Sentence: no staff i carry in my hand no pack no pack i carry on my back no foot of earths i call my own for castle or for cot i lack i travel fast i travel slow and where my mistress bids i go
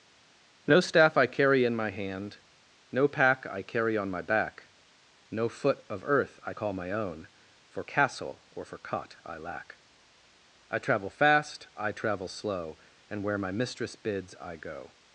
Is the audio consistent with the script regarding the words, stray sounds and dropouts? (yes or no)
no